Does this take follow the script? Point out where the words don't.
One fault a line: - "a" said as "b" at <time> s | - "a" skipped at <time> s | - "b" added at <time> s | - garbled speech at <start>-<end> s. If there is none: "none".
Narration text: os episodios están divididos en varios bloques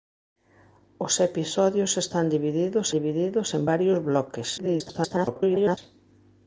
- "divididos" added at 3.0 s
- garbled speech at 4.6-5.8 s